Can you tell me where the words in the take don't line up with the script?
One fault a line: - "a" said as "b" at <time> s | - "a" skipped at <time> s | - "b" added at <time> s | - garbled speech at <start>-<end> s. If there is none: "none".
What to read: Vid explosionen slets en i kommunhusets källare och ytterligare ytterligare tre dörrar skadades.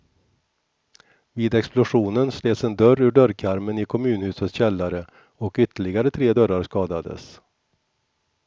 - "dörr ur dörrkarmen" added at 2.8 s
- "ytterligare" skipped at 6.1 s